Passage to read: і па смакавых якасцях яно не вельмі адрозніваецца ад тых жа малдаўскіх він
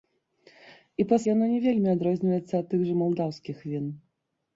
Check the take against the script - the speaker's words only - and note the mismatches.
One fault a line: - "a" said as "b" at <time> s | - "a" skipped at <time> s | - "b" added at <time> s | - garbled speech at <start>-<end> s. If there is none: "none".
- "смакавых якасцях" skipped at 1.2 s